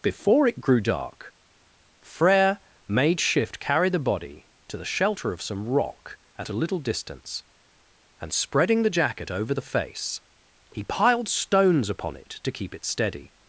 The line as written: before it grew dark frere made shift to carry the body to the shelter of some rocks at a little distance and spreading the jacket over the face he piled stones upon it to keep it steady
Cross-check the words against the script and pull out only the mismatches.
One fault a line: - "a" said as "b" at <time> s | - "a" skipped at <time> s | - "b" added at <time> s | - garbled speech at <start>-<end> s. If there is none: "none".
- "to" skipped at 3.6 s
- "rocks" said as "rock" at 5.7 s